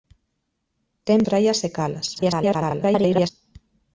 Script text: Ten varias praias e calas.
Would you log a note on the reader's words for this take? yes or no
yes